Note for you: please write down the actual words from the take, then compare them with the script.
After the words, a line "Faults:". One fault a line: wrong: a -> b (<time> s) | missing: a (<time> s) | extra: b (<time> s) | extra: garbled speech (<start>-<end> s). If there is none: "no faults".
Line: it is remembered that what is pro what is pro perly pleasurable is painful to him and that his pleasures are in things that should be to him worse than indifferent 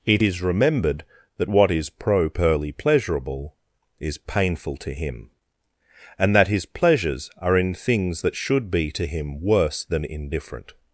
it is remembered that what is pro perly pleasurable is painful to him and that his pleasures are in things that should be to him worse than indifferent
Faults:
missing: what is pro (2.3 s)